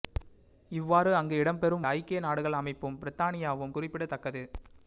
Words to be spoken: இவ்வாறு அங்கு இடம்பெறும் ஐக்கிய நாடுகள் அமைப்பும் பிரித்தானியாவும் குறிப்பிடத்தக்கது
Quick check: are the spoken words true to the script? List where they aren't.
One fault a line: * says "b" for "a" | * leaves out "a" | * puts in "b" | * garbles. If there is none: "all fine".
all fine